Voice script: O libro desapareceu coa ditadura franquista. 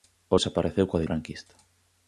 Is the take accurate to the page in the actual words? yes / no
no